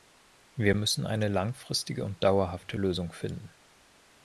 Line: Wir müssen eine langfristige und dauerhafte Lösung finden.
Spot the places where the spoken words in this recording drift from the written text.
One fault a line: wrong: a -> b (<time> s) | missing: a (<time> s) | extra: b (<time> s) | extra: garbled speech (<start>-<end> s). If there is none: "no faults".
no faults